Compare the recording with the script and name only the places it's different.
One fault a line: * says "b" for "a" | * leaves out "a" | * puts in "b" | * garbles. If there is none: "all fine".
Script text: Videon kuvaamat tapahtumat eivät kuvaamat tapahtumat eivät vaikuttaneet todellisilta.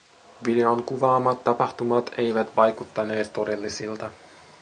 * leaves out "kuvaamat tapahtumat eivät"